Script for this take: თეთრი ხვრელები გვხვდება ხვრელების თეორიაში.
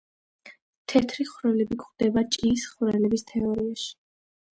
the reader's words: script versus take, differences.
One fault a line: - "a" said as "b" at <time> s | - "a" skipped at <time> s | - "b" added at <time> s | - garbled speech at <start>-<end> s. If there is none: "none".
- "ჭიის" added at 2.4 s